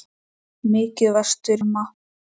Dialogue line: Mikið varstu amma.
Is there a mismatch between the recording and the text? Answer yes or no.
no